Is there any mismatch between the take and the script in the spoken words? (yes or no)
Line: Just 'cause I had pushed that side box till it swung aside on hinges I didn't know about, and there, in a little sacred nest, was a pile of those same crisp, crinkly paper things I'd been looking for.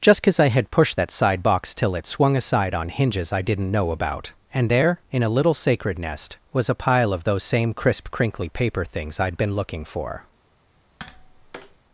no